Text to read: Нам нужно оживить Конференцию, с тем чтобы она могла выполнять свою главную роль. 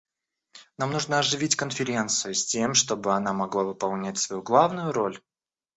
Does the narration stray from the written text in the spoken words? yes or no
no